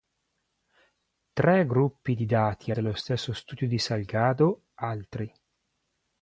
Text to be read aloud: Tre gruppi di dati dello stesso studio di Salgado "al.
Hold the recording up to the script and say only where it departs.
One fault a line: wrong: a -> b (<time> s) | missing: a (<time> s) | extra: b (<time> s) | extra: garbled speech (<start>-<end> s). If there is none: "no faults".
no faults